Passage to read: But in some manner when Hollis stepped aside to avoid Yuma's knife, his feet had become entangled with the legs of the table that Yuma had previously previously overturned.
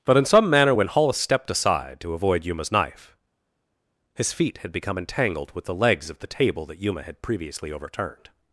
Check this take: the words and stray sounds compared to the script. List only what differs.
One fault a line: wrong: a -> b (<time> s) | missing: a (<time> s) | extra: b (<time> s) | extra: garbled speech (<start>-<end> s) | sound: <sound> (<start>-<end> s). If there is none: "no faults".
missing: previously (7.7 s)